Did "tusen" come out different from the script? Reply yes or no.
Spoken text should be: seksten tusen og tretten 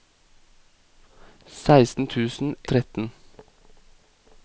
no